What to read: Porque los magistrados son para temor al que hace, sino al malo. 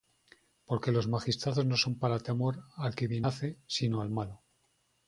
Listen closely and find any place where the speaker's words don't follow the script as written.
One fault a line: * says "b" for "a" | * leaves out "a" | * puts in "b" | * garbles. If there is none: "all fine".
* puts in "no"
* puts in "bien"